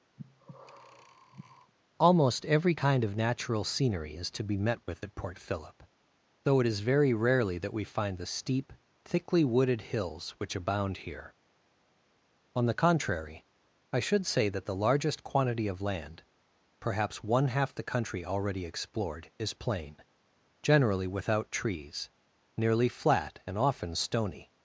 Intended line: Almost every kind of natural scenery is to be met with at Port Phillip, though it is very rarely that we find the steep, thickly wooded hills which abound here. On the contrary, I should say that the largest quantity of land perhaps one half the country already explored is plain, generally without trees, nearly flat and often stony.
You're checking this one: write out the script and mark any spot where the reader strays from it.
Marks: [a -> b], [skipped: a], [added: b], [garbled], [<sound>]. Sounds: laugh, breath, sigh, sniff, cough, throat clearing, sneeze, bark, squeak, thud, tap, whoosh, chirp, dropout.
[breath] Almost every kind of natural scenery is to be met with at Port Phillip, though it is very rarely that we find the steep, thickly wooded hills which abound here. On the contrary, I should say that the largest quantity of land perhaps one half the country already explored is plain, generally without trees, nearly flat and often stony.